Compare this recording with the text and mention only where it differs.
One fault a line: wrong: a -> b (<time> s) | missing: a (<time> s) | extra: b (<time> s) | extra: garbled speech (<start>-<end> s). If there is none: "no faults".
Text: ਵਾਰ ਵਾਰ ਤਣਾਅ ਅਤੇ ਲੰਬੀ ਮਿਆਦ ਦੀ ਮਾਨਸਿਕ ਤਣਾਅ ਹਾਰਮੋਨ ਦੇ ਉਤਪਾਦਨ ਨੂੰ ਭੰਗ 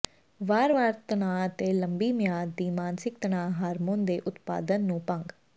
no faults